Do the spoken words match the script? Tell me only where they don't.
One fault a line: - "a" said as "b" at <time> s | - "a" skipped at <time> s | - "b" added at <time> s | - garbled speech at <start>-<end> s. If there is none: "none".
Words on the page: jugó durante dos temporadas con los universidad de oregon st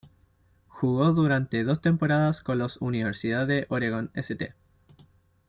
none